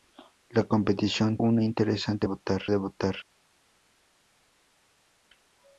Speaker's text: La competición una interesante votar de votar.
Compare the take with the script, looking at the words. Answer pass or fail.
pass